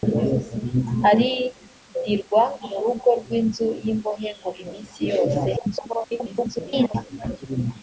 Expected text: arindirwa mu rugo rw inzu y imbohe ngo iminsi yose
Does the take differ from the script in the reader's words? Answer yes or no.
yes